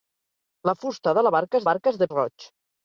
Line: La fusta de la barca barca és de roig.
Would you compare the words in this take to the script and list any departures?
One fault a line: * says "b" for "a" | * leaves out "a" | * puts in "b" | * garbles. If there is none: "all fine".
all fine